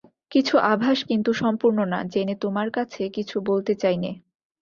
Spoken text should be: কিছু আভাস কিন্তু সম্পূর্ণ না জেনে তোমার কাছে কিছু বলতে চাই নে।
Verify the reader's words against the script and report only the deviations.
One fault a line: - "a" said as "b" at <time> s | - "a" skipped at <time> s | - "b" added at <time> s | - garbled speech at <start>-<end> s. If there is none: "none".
none